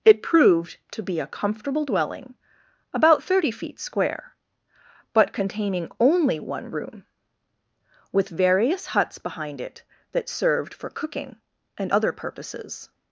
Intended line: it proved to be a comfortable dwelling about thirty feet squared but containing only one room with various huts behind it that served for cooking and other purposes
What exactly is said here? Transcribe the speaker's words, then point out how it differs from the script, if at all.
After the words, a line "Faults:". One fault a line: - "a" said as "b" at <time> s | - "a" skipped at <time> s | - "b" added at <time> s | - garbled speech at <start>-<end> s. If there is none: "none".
it proved to be a comfortable dwelling about thirty feet square but containing only one room with various huts behind it that served for cooking and other purposes
Faults:
- "squared" said as "square" at 3.8 s